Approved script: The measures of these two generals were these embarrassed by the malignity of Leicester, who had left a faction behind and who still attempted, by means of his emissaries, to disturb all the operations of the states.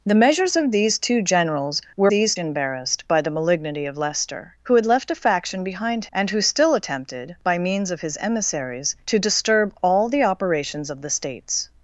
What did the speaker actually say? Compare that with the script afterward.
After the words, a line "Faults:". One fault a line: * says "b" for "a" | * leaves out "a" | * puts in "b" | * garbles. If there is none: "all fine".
The measures of these two generals were these embarrassed by the malignity of Leicester, who had left a faction behind and who still attempted, by means of his emissaries, to disturb all the operations of the states.
Faults:
all fine